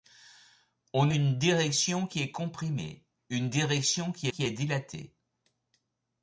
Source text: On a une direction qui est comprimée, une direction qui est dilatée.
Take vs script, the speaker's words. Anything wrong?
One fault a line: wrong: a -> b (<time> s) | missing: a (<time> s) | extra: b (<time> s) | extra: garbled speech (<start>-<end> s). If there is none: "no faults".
missing: a (1.1 s)
extra: qui (4.3 s)